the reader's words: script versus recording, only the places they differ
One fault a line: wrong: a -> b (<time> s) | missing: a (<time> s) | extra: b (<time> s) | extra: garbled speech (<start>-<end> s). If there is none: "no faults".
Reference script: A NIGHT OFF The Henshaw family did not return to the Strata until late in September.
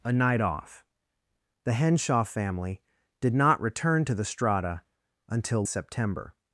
missing: late in (5.7 s)